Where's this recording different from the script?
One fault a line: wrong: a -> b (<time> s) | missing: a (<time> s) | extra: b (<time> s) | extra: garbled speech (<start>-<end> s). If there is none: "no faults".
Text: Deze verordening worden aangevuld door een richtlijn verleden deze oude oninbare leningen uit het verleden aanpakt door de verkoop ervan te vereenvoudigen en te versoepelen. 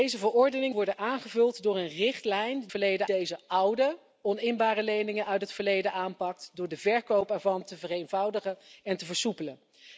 no faults